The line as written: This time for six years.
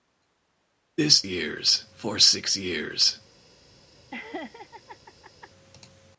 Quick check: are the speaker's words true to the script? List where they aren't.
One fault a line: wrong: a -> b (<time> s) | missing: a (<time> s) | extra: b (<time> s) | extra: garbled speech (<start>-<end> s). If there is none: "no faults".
wrong: time -> years (1.2 s)